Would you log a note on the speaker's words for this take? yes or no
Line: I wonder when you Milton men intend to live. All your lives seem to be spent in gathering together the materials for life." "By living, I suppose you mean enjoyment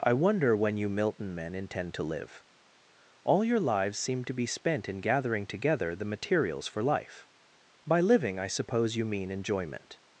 no